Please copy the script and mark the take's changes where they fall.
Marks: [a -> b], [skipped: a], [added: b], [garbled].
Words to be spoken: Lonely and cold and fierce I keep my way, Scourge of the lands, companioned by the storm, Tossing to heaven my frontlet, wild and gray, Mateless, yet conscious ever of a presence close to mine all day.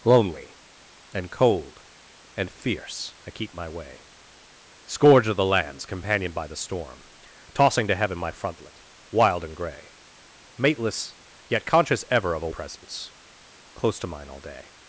Lonely and cold and fierce I keep my way, Scourge of the lands, companioned by the storm, Tossing to heaven my frontlet, wild and gray, Mateless, yet conscious ever of a presence close to mine all day.